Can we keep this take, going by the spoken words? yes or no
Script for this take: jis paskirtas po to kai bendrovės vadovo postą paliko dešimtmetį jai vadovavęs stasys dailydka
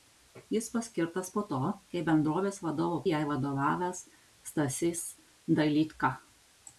no